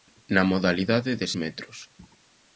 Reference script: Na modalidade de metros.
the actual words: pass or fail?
pass